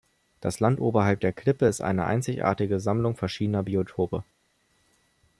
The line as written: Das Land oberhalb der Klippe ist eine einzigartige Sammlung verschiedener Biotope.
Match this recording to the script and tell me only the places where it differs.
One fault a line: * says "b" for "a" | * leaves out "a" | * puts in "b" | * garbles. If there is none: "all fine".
all fine